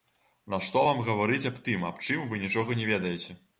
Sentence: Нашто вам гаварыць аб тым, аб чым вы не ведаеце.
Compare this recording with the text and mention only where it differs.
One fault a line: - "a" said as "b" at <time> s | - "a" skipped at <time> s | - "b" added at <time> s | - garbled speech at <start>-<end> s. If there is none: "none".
- "нічога" added at 2.5 s